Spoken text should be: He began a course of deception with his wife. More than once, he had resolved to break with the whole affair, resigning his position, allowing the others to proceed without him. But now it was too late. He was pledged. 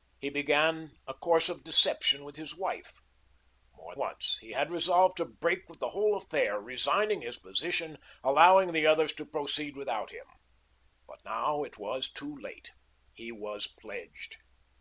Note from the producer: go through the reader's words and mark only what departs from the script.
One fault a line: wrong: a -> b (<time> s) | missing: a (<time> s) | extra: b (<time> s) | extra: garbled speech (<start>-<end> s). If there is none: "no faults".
missing: than (4.0 s)